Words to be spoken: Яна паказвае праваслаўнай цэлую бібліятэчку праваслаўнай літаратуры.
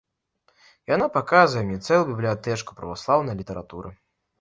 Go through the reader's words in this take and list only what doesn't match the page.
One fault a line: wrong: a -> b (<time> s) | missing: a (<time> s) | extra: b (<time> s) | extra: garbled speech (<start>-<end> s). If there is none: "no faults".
wrong: праваслаўнай -> мне (1.7 s)